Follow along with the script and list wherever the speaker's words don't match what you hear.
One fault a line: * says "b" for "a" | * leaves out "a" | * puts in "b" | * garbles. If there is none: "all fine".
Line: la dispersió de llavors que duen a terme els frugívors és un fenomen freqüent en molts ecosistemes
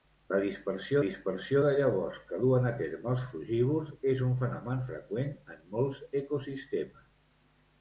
* puts in "dispersió"